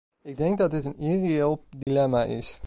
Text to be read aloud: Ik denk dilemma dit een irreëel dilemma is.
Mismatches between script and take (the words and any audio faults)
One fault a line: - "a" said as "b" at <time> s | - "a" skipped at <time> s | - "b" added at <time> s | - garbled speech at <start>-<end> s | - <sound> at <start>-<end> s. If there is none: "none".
- "dilemma" said as "dat" at 0.6 s
- dropout at 1.8-1.9 s